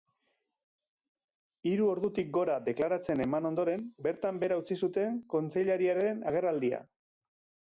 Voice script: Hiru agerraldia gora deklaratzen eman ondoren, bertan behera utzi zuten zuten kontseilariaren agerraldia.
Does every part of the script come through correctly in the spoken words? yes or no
no